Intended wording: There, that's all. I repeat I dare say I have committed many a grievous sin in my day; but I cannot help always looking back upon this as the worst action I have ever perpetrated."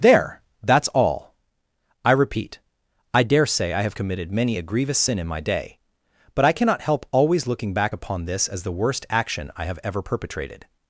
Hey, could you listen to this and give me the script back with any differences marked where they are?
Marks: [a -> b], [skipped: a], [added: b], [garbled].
There, that's all. I repeat I dare say I have committed many a grievous sin in my day; but I cannot help always looking back upon this as the worst action I have ever perpetrated."